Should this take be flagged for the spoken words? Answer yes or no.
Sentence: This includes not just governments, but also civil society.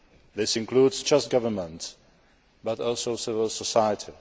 yes